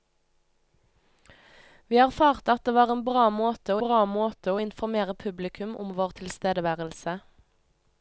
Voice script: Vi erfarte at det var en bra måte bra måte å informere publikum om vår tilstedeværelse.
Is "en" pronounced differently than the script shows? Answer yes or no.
no